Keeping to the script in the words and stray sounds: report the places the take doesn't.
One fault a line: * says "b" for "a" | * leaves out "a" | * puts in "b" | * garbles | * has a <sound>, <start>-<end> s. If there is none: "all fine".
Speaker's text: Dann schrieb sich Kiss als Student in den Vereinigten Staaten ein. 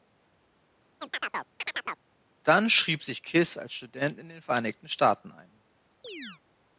* has a chirp, 1.0-2.1 s
* has a chirp, 6.0-6.4 s